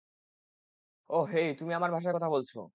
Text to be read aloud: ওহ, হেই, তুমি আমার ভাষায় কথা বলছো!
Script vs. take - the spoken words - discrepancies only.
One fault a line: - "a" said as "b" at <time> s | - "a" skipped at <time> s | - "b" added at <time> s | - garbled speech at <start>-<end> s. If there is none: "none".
none